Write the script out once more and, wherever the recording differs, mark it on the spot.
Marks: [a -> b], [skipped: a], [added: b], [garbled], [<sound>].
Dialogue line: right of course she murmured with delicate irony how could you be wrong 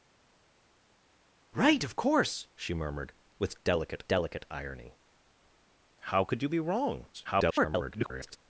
right of course she murmured with delicate [added: delicate] irony how could you be wrong [garbled]